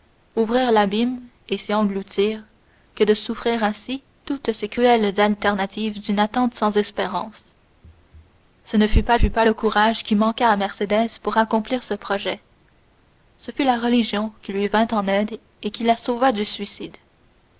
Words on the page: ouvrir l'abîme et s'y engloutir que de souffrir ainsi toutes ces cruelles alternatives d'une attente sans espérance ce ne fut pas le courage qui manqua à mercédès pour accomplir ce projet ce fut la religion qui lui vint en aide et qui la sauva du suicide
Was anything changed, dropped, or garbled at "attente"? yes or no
no